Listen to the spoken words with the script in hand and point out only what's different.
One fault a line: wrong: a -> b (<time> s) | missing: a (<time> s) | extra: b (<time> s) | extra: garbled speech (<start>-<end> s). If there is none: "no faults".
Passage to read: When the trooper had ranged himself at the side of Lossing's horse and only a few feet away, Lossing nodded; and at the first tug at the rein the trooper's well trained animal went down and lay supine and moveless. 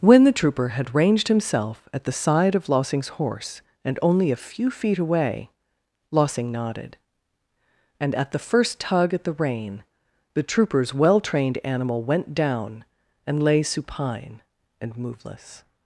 no faults